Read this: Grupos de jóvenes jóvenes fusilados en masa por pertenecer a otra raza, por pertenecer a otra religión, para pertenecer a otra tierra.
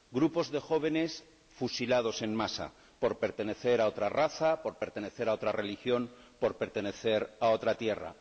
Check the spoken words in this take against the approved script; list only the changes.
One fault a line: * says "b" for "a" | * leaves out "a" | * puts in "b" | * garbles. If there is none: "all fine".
* leaves out "jóvenes"
* says "por" for "para"